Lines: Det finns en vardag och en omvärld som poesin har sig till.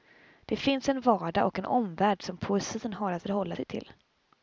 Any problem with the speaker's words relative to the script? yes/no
yes